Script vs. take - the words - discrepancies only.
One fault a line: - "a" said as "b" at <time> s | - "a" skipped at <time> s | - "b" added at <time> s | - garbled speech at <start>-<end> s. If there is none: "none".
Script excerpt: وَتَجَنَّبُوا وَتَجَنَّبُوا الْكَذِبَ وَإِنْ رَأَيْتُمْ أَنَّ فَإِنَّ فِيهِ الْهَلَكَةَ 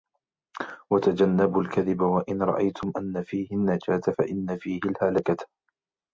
- "وَتَجَنَّبُوا" skipped at 1.6 s
- "فِيهِ النَّجَاةَ" added at 3.2 s